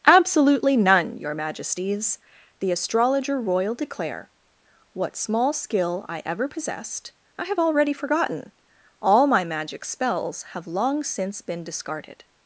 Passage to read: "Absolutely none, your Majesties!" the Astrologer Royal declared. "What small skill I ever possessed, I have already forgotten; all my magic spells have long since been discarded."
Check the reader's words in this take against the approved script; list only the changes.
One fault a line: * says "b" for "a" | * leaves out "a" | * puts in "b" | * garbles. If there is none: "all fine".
* says "declare" for "declared"